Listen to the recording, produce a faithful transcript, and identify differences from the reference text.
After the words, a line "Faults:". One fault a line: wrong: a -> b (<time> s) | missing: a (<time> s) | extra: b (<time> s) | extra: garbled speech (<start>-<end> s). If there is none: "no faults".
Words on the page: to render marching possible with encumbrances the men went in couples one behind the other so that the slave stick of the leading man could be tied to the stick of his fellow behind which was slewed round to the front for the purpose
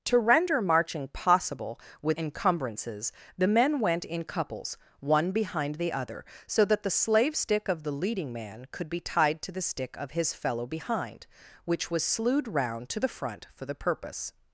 to render marching possible with encumbrances the men went in couples one behind the other so that the slave stick of the leading man could be tied to the stick of his fellow behind which was slewed round to the front for the purpose
Faults:
no faults